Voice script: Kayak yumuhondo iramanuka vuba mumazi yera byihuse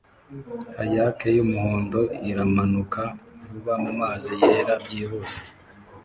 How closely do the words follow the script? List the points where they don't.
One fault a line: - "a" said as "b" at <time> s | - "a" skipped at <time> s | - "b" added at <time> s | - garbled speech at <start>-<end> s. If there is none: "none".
none